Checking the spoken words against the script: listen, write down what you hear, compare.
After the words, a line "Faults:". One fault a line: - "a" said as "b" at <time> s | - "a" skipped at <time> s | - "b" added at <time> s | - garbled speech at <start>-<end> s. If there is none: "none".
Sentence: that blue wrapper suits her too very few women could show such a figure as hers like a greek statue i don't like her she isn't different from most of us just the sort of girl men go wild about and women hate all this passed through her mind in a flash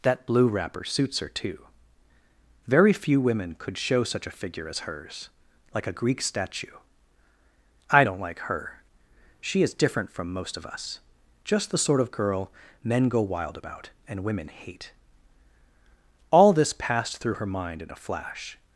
that blue wrapper suits her too very few women could show such a figure as hers like a greek statue i don't like her she is different from most of us just the sort of girl men go wild about and women hate all this passed through her mind in a flash
Faults:
- "isn't" said as "is" at 9.6 s